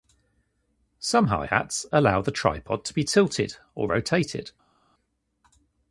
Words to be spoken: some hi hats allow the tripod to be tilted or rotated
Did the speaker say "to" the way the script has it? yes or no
yes